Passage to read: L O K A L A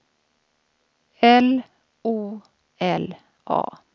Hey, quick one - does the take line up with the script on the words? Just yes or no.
no